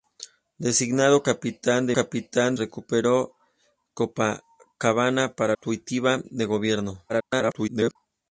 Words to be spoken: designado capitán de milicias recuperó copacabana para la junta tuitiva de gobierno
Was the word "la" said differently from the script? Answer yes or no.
yes